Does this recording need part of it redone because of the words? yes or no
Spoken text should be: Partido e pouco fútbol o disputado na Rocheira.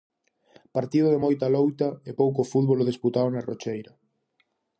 yes